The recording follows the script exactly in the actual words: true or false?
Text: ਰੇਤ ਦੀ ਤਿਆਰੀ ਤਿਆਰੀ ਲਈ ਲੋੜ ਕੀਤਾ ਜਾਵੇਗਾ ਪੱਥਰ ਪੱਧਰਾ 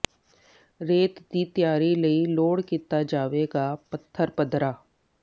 false